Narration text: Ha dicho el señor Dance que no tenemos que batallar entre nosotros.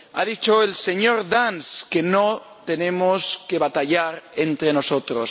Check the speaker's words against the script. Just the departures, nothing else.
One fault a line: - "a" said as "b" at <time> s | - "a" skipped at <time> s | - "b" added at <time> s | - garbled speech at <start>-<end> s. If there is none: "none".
none